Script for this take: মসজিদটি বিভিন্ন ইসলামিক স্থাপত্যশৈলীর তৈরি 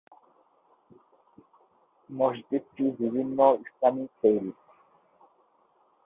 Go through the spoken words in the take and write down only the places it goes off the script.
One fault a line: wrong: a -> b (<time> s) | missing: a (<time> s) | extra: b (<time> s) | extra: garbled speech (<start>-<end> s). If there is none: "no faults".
missing: স্থাপত্যশৈলীর (4.1 s)